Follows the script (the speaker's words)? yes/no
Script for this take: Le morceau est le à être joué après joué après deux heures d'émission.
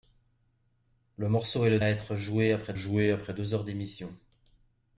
yes